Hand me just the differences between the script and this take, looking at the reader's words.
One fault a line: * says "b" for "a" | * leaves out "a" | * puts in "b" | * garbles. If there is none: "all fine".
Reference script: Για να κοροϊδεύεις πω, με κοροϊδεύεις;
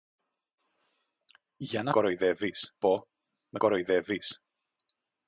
all fine